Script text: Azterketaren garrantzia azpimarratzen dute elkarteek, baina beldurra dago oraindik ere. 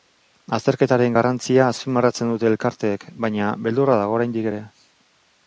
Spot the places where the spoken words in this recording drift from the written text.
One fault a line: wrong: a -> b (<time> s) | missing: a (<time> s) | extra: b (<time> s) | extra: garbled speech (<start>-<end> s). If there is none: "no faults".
no faults